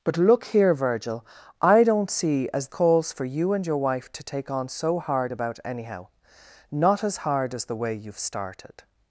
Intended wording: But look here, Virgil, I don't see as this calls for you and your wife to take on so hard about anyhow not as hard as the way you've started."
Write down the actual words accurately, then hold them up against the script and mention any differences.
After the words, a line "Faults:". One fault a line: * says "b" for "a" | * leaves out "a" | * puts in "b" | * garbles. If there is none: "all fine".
But look here, Virgil, I don't see as calls for you and your wife to take on so hard about anyhow not as hard as the way you've started."
Faults:
* leaves out "this"